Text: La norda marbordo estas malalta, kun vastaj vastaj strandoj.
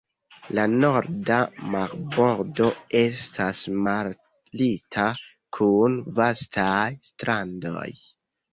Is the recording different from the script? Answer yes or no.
yes